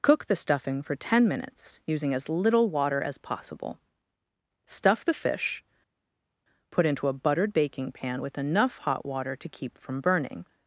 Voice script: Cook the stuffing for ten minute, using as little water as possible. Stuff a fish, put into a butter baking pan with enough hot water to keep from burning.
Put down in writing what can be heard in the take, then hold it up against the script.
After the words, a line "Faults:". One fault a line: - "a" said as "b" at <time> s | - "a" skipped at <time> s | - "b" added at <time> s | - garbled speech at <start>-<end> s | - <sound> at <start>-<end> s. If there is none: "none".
Cook the stuffing for ten minutes, using as little water as possible. Stuff the fish, put into a buttered baking pan with enough hot water to keep from burning.
Faults:
- "minute" said as "minutes" at 1.3 s
- "a" said as "the" at 5.0 s
- "butter" said as "buttered" at 7.1 s